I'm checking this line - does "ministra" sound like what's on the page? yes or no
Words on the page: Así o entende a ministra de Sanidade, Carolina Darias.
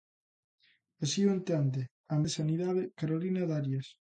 no